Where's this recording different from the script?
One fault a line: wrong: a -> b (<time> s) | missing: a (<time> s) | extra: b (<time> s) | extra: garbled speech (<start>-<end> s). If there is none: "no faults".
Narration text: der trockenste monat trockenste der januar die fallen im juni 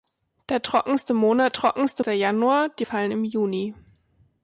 no faults